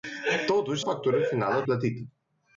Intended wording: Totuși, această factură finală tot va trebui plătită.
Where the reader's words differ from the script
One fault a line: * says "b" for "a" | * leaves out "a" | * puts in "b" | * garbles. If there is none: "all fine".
* leaves out "această"
* leaves out "tot va trebui"